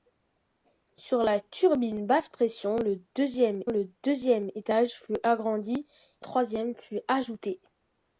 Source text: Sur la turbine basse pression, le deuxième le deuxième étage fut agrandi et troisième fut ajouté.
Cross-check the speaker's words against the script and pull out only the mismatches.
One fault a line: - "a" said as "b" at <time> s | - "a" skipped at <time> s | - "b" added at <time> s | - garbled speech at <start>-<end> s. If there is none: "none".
none